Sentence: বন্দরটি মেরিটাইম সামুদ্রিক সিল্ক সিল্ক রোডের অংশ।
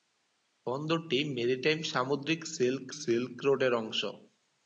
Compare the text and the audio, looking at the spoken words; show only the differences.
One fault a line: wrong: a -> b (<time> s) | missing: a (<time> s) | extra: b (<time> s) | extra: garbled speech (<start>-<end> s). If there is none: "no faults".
no faults